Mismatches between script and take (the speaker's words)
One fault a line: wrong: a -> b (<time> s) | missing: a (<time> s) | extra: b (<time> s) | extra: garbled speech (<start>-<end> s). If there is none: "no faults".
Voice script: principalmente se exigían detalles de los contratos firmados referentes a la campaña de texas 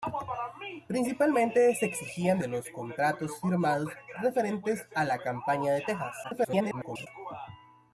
missing: detalles (2.4 s)
extra: garbled speech (6.2-7.1 s)